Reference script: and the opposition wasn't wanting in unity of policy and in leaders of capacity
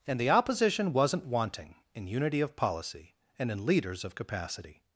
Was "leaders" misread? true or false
false